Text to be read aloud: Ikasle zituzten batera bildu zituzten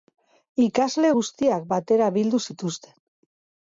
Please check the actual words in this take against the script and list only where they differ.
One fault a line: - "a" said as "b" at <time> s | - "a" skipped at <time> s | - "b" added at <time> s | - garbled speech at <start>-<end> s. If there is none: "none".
- "zituzten" said as "guztiak" at 1.2 s